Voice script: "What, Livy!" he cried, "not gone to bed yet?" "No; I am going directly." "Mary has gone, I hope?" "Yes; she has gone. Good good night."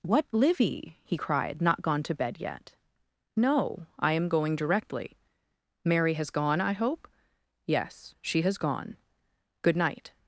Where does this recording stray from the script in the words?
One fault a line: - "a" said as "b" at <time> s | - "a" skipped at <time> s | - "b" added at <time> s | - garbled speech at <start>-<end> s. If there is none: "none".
- "good" skipped at 9.7 s